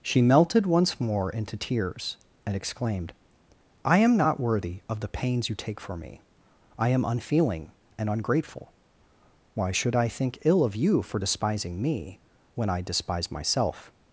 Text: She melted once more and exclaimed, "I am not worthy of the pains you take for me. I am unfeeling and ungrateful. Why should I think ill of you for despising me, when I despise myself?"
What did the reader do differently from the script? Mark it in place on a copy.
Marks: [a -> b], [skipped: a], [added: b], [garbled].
She melted once more [added: into tears] and exclaimed, "I am not worthy of the pains you take for me. I am unfeeling and ungrateful. Why should I think ill of you for despising me, when I despise myself?"